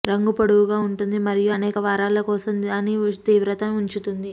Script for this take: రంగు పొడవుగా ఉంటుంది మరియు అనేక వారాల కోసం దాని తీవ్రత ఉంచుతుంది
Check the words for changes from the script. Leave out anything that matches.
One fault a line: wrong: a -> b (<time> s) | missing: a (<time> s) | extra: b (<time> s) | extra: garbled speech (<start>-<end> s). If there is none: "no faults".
no faults